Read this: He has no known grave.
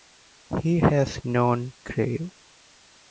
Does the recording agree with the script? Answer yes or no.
no